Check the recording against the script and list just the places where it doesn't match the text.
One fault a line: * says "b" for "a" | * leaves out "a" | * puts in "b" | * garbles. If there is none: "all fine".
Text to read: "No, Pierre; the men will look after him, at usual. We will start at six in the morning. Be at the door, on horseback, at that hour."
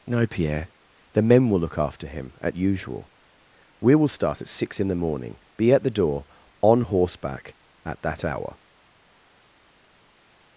all fine